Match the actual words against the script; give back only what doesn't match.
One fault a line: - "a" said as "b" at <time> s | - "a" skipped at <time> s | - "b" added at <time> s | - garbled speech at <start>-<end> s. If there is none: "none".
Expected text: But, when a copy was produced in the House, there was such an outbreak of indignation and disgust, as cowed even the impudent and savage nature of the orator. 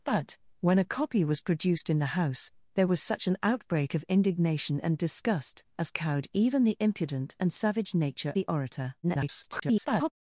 - "of" skipped at 8.3 s
- garbled speech at 9.0-10.1 s